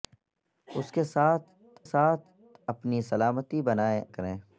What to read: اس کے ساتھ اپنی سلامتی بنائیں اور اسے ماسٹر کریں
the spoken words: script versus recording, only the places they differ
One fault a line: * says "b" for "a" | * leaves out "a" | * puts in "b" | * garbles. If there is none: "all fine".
* puts in "ساتھ"
* leaves out "اور اسے ماسٹر"